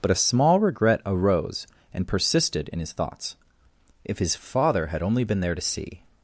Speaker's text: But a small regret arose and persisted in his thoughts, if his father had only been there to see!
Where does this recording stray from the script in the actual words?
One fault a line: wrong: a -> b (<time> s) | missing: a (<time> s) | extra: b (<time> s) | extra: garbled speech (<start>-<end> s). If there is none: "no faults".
no faults